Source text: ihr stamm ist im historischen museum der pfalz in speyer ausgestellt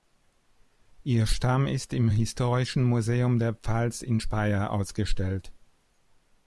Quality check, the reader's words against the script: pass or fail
pass